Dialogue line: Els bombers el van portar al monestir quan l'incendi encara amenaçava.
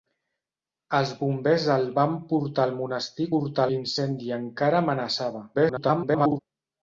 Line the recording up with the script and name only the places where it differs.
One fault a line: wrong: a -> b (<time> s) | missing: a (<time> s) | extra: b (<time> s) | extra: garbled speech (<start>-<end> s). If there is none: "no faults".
wrong: quan -> portar (3.3 s)
extra: garbled speech (5.5-6.4 s)